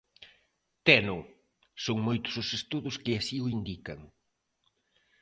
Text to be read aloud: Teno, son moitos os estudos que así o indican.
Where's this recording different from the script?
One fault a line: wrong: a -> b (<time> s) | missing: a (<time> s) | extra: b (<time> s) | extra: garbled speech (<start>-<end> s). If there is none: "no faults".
no faults